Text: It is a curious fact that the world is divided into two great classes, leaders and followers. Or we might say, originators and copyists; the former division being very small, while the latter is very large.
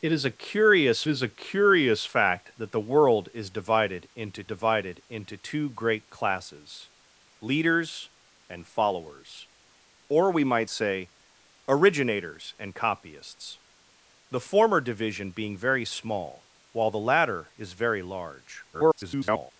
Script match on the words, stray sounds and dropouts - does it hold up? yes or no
no